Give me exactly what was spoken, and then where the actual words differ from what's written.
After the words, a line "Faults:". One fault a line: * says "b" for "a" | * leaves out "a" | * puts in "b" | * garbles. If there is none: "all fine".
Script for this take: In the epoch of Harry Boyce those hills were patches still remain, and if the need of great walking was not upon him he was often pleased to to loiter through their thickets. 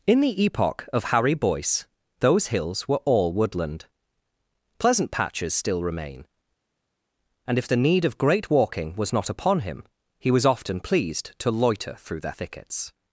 In the epoch of Harry Boyce those hills were all woodland pleasant patches still remain, and if the need of great walking was not upon him he was often pleased to loiter through their thickets.
Faults:
* puts in "all woodland pleasant"
* leaves out "to"